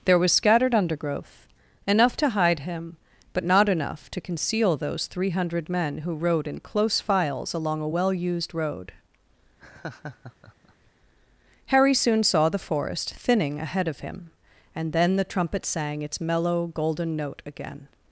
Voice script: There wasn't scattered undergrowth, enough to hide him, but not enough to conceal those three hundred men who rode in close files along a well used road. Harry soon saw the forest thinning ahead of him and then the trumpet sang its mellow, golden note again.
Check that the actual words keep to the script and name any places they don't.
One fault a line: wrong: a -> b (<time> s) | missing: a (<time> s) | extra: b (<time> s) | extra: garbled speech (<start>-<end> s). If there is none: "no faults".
wrong: wasn't -> was (0.2 s)